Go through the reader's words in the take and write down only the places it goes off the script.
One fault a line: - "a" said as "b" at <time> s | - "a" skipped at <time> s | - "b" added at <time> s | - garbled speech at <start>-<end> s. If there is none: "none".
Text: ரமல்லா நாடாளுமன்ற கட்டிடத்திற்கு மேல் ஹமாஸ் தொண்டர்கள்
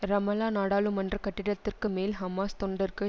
none